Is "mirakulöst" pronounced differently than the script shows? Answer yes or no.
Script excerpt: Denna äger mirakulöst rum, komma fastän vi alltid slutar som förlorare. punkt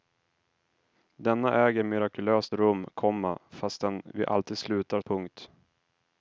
no